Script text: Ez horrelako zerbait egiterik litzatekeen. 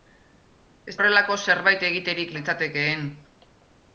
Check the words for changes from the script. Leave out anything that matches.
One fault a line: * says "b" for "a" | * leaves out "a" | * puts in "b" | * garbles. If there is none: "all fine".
all fine